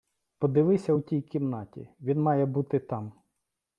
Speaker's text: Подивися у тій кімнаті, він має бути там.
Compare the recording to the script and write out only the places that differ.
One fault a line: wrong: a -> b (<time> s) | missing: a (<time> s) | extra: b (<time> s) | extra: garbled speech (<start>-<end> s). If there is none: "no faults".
no faults